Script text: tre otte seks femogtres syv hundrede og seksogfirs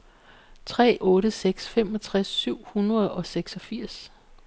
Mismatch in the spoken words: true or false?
false